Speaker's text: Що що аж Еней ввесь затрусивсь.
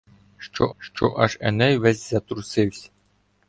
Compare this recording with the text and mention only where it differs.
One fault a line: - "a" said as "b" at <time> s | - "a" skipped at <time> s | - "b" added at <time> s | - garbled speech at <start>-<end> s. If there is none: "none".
none